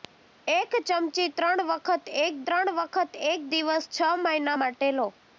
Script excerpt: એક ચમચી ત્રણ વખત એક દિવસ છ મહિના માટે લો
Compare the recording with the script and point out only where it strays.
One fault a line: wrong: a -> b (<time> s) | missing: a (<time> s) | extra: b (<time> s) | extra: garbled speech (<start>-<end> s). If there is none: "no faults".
extra: ત્રણ વખત એક (2.4 s)